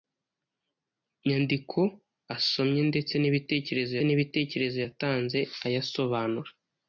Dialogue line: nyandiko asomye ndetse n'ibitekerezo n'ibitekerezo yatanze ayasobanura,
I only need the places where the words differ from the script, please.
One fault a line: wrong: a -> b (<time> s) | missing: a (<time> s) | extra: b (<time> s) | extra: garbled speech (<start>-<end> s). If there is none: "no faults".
no faults